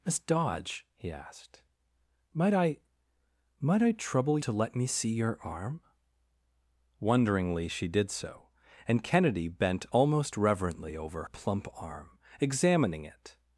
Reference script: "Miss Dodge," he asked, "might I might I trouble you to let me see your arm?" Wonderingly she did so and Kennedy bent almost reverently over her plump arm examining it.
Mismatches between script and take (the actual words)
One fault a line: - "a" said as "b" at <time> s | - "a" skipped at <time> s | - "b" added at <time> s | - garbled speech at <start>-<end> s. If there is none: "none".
- "you" skipped at 4.4 s
- "her" skipped at 11.2 s